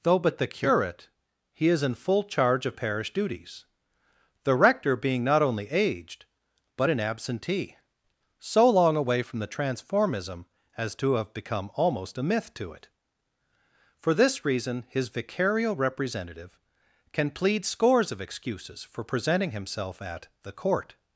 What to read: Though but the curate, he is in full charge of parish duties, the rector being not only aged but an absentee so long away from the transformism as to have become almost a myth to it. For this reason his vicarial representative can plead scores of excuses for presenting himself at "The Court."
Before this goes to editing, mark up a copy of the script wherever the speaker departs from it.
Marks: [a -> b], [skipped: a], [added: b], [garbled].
Though but the curate, he is in full charge of parish duties, the rector being not only aged but an absentee so long away from the transformism as to have become almost a myth to it. For this reason his vicarial representative can plead scores of excuses for presenting himself at "The Court."